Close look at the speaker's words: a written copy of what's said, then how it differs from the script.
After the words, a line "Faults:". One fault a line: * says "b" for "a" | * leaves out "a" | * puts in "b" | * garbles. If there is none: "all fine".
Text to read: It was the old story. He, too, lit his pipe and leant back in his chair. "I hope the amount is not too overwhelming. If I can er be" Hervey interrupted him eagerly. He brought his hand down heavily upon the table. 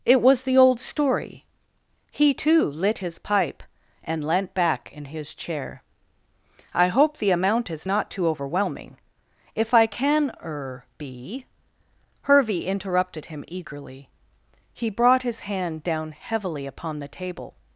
It was the old story. He, too, lit his pipe and leant back in his chair. "I hope the amount is not too overwhelming. If I can er be" Hervey interrupted him eagerly. He brought his hand down heavily upon the table.
Faults:
all fine